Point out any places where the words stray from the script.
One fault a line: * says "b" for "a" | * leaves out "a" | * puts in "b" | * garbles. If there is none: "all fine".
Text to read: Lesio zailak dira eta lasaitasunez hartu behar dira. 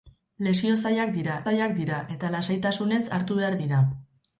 * puts in "zailak dira"